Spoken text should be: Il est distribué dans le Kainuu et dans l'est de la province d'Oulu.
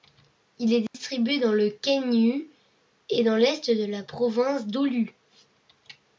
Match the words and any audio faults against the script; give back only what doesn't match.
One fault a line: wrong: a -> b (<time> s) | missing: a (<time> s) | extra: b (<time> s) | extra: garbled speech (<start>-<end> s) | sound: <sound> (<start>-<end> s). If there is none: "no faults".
sound: dropout (0.9-0.9 s)